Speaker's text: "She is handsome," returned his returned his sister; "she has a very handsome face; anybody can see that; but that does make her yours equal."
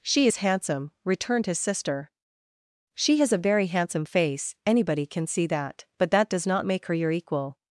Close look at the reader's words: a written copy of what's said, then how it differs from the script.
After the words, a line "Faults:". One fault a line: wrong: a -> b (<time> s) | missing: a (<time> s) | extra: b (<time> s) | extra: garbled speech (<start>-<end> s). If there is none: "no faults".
"She is handsome," returned his sister; "she has a very handsome face; anybody can see that; but that does not make her your equal."
Faults:
missing: returned his (1.6 s)
extra: not (6.4 s)
wrong: yours -> your (6.9 s)